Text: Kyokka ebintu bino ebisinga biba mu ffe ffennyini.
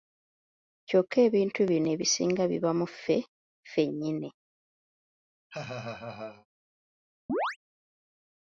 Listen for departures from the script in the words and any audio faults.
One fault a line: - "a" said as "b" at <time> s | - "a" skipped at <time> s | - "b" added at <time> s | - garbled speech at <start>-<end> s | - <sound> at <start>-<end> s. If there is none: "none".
- laugh at 5.5-6.5 s
- chirp at 7.3-7.6 s